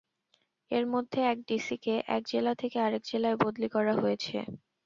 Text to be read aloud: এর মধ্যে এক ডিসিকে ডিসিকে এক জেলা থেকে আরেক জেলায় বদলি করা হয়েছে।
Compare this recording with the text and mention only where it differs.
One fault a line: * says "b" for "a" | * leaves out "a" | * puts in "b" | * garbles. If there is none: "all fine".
* leaves out "ডিসিকে"